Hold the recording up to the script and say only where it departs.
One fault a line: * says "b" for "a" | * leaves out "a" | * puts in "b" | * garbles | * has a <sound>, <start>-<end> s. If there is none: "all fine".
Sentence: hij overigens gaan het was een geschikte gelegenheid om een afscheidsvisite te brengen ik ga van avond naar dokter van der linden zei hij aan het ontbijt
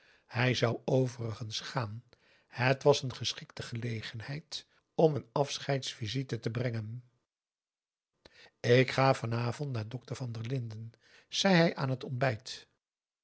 * puts in "zou"